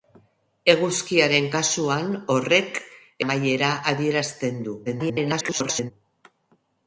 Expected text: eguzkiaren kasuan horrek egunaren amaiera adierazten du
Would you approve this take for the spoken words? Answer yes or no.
no